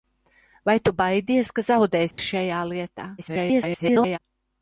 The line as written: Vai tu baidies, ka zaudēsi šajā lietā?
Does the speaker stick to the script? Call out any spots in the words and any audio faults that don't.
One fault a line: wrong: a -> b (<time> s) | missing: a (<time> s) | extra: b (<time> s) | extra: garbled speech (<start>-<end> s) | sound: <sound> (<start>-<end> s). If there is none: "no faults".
sound: dropout (2.1-2.2 s)
extra: garbled speech (3.2-4.2 s)